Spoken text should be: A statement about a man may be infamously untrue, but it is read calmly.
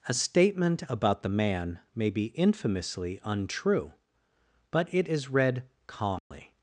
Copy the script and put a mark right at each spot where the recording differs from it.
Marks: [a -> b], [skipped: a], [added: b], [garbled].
A statement about [a -> the] man may be infamously untrue, but it is read calmly.